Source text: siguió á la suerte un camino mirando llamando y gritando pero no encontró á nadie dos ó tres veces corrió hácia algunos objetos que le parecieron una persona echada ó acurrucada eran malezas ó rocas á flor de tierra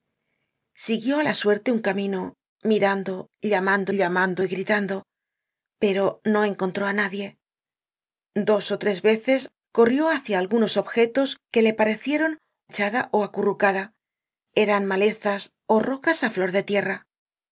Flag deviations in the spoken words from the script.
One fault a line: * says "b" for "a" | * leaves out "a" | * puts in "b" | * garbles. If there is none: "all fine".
* puts in "llamando"
* leaves out "una persona"